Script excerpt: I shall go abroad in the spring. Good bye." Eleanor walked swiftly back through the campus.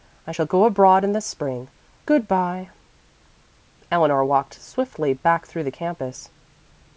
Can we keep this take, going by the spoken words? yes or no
yes